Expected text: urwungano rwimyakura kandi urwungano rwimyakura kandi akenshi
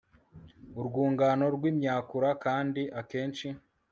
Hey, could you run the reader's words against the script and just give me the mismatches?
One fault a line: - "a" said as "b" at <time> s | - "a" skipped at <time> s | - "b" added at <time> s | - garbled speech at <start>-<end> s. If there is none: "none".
- "urwungano rwimyakura kandi" skipped at 2.8 s